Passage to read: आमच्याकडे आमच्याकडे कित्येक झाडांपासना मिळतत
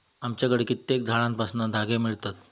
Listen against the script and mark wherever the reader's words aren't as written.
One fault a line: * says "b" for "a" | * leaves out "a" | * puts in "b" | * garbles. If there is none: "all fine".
* leaves out "आमच्याकडे"
* puts in "धागे"